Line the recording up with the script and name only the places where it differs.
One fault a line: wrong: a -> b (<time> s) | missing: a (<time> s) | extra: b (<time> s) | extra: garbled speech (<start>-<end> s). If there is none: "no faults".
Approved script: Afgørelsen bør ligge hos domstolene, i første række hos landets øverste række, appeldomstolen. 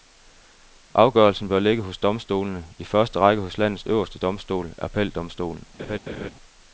wrong: række -> domstol (4.2 s)